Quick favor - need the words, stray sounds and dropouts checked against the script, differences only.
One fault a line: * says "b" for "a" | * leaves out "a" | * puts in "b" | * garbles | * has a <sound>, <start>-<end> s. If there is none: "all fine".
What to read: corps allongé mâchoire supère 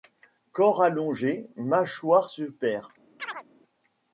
* has a chirp, 3.2-3.4 s